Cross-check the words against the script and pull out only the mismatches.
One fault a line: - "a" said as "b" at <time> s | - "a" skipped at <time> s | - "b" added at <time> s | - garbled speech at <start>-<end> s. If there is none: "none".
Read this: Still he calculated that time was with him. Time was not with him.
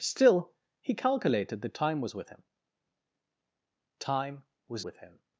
- "not" skipped at 4.9 s